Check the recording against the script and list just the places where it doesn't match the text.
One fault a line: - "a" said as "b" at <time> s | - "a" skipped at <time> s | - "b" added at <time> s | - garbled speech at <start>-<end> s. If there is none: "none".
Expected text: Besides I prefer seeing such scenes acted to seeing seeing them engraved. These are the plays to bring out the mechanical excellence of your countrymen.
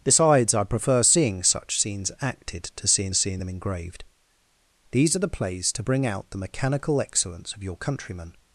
none